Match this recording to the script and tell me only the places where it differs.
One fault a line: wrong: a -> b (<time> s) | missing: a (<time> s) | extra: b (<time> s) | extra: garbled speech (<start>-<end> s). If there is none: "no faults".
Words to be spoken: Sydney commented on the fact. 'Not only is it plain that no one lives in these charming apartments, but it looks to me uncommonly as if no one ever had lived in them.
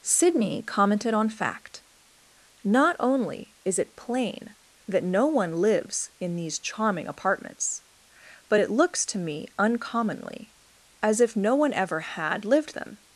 missing: the (1.3 s)
missing: in (12.7 s)